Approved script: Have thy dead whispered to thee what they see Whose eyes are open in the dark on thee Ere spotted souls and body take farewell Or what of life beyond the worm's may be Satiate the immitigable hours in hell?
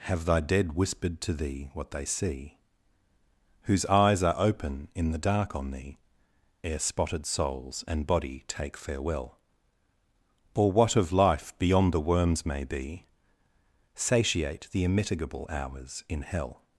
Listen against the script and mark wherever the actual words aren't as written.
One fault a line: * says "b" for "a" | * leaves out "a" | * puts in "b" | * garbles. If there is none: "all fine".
all fine